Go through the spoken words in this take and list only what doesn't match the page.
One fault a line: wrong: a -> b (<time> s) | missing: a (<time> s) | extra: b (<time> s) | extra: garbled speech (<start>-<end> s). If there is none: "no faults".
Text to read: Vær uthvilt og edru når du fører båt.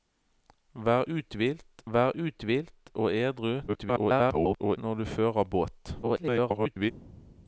extra: vær uthvilt (1.9 s)
extra: garbled speech (3.7-4.8 s)
extra: garbled speech (6.0-6.9 s)